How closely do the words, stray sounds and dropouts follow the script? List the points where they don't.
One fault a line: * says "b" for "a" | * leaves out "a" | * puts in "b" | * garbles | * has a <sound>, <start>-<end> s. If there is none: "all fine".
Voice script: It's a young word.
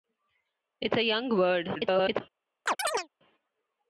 * garbles
* has a chirp, 2.7-3.1 s